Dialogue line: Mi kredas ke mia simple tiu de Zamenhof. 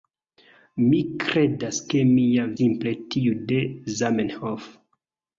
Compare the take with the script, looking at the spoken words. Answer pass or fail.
pass